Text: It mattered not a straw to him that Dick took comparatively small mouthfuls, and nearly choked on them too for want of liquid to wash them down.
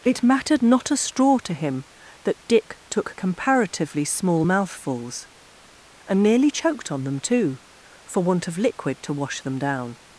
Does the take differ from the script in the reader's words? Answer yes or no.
no